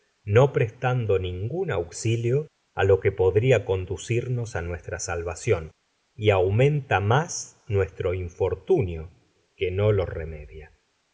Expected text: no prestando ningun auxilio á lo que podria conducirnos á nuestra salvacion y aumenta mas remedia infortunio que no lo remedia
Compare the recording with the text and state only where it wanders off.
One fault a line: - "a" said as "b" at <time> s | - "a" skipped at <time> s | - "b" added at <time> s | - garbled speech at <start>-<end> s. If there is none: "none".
- "remedia" said as "nuestro" at 7.8 s